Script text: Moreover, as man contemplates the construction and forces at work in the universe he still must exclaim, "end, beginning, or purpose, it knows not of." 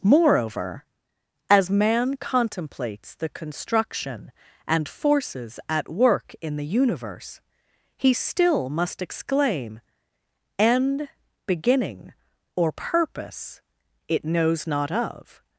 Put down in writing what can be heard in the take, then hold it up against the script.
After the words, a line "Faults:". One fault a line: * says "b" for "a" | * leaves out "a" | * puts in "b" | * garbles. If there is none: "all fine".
Moreover, as man contemplates the construction and forces at work in the universe he still must exclaim, "end, beginning, or purpose, it knows not of."
Faults:
all fine